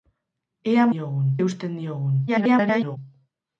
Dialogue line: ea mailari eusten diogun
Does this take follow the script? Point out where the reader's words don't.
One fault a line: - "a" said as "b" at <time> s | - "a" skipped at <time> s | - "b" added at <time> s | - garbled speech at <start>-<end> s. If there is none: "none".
- "mailari" said as "diogun" at 1.0 s
- garbled speech at 2.3-3.0 s